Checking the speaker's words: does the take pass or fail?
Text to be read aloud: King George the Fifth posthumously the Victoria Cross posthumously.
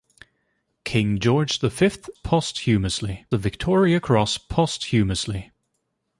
pass